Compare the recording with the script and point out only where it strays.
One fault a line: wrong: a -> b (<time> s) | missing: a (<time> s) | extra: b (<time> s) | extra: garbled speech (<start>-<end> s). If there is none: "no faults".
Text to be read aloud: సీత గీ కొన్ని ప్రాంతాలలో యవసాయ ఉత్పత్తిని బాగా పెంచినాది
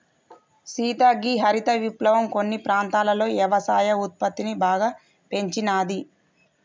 extra: హరిత విప్లవం (1.4 s)